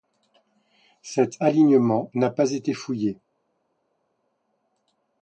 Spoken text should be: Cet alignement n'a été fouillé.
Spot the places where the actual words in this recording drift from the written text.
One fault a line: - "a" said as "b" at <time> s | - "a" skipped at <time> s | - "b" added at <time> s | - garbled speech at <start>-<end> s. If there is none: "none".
- "pas" added at 2.3 s